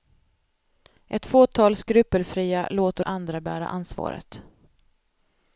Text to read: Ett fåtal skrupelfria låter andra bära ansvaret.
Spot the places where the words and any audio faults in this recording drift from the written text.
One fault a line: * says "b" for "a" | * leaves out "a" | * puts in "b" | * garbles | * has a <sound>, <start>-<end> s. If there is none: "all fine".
all fine